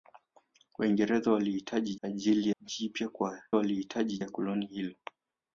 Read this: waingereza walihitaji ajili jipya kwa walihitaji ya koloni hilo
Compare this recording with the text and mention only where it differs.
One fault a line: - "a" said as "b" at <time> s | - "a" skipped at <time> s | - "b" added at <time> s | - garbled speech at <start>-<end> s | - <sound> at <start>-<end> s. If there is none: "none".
none